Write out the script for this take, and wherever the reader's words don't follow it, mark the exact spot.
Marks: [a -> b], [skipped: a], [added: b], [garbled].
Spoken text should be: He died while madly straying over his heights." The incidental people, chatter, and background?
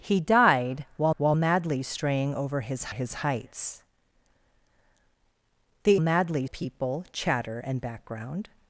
He died while [added: while] madly straying over his [added: his] heights." The [incidental -> madly] people, chatter, and background?